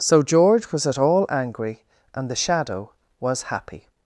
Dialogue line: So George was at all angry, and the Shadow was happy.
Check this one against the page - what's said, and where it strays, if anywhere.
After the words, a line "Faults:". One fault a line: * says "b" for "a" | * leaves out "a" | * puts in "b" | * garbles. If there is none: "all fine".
So George was at all angry, and the Shadow was happy.
Faults:
all fine